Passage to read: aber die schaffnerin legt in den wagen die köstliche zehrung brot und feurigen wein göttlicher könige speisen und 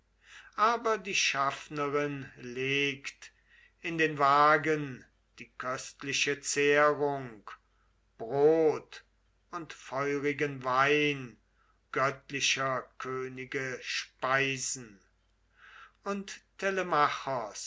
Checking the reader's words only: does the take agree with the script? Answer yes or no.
yes